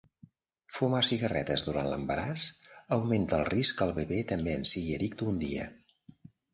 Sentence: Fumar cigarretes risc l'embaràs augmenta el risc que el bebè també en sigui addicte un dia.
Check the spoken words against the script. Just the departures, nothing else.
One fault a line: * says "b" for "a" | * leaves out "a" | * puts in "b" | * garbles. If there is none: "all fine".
* says "durant" for "risc"